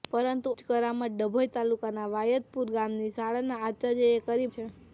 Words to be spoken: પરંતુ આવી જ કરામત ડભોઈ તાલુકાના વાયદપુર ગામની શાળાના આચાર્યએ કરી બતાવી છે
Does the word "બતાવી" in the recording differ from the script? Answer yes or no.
yes